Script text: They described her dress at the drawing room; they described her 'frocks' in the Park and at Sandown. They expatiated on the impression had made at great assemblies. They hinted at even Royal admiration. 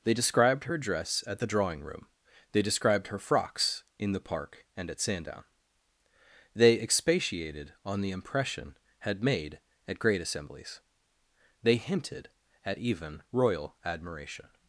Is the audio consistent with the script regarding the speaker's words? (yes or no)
yes